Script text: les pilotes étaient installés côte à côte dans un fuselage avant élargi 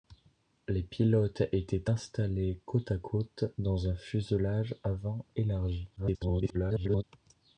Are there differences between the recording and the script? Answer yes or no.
yes